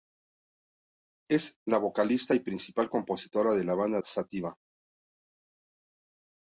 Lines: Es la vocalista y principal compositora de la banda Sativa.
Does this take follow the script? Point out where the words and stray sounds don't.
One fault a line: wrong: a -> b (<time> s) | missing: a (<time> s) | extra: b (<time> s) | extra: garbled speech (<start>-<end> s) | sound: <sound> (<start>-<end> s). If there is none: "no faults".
no faults